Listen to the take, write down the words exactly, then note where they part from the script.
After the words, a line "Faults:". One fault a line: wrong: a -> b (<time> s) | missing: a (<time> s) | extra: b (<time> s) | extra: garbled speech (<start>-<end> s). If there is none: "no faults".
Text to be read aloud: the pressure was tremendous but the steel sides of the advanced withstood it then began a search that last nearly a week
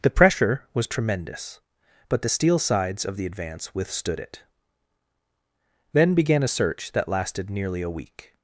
the pressure was tremendous but the steel sides of the advance withstood it then began a search that lasted nearly a week
Faults:
wrong: advanced -> advance (3.2 s)
wrong: last -> lasted (7.1 s)